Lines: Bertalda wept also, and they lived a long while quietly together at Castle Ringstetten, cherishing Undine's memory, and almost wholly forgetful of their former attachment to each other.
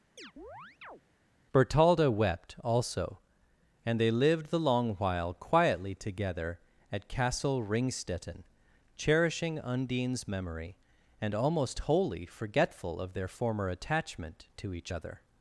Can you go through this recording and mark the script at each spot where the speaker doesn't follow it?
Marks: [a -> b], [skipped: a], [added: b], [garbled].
Bertalda wept also, and they lived [a -> the] long while quietly together at Castle Ringstetten, cherishing Undine's memory, and almost wholly forgetful of their former attachment to each other.